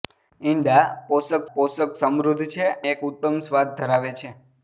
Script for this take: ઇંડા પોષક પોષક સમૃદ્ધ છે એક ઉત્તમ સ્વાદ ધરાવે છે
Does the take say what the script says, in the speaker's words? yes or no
yes